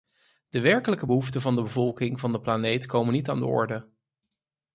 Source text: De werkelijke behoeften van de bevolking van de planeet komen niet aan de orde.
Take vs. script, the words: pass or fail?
pass